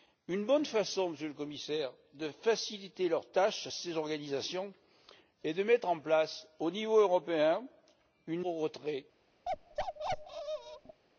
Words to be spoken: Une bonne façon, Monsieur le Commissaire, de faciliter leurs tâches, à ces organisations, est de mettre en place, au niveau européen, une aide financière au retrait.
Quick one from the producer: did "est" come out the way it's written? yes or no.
yes